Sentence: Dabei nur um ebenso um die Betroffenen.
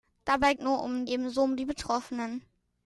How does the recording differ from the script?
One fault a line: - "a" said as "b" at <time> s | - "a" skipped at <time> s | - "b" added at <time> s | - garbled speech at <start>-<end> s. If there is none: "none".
none